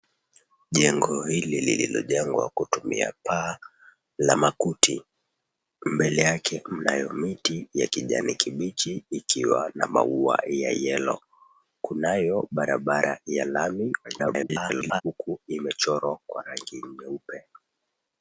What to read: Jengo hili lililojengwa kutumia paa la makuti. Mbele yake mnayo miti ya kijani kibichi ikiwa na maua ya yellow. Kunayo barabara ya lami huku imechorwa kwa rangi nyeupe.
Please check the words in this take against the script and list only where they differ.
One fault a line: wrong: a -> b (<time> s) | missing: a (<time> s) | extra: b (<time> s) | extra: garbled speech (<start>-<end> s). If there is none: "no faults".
extra: garbled speech (14.0-15.0 s)